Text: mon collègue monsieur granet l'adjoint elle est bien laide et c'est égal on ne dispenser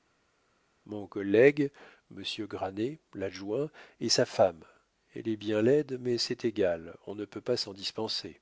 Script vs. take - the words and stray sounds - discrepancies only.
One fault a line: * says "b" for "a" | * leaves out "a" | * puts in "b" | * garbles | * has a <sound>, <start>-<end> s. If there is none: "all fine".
* puts in "et sa femme"
* says "mais" for "et"
* puts in "peut pas s'en"